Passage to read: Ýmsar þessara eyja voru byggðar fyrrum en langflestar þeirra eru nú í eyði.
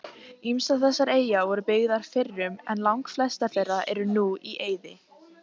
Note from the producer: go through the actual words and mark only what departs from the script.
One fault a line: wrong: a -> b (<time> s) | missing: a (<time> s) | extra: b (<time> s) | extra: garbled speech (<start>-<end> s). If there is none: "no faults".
no faults